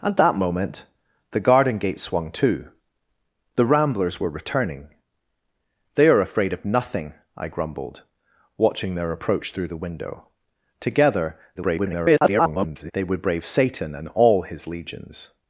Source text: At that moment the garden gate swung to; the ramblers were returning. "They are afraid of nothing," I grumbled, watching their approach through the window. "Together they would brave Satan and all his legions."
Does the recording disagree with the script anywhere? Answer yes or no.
yes